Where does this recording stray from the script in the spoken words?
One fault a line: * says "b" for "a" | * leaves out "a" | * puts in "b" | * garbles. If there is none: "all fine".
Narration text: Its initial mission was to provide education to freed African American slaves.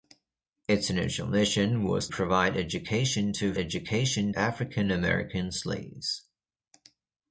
* leaves out "to"
* says "education" for "freed"